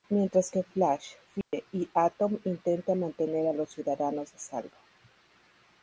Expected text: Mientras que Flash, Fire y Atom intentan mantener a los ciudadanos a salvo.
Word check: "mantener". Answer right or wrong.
right